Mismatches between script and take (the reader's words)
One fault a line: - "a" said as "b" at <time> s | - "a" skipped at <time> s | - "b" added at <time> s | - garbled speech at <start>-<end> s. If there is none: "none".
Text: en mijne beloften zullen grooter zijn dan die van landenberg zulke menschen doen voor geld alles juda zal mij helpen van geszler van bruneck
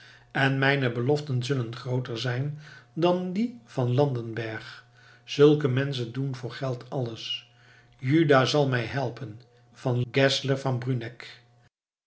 none